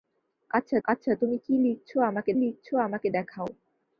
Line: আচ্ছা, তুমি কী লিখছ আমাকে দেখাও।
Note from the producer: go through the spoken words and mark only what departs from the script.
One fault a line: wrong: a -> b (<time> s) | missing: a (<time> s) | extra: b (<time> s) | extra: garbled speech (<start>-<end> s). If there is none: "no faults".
extra: আচ্ছা (0.9 s)
extra: লিখছ আমাকে (2.4 s)